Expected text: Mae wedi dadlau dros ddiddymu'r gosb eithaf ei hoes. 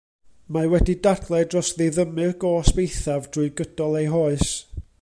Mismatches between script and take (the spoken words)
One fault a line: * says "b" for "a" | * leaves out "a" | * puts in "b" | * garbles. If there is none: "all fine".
* puts in "drwy gydol"